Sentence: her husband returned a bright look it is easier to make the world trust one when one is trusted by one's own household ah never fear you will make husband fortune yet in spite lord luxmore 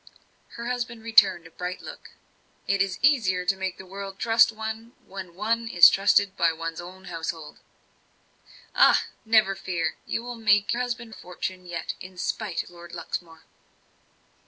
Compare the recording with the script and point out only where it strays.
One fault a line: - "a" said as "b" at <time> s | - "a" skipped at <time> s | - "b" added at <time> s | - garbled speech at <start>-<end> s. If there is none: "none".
none